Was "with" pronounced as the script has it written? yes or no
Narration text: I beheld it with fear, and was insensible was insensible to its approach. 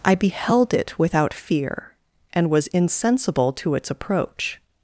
no